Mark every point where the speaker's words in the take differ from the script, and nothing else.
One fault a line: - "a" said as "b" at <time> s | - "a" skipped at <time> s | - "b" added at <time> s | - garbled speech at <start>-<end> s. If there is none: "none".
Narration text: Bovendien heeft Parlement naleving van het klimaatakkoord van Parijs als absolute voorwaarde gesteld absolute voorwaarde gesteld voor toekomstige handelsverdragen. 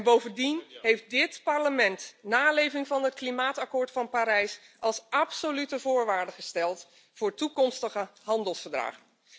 - "dit" added at 1.1 s
- "absolute voorwaarde gesteld" skipped at 6.9 s